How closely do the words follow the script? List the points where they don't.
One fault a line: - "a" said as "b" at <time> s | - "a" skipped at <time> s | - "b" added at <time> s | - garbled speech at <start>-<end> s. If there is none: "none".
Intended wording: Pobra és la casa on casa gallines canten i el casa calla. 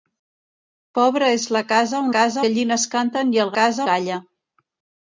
none